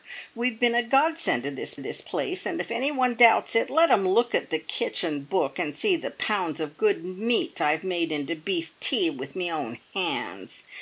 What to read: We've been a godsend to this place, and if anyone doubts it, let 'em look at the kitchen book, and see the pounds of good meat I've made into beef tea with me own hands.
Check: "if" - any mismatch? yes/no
no